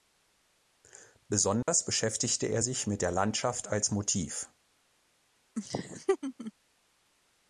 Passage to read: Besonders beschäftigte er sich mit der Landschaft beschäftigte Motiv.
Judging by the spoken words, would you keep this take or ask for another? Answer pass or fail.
fail